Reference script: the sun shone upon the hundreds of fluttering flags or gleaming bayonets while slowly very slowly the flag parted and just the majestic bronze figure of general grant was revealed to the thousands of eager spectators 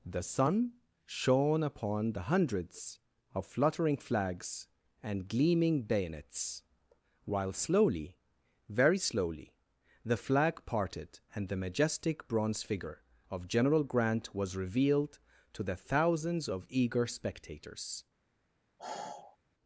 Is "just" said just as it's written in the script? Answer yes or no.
no